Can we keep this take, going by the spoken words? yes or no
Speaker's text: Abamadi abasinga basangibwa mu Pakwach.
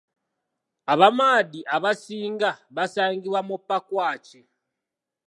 yes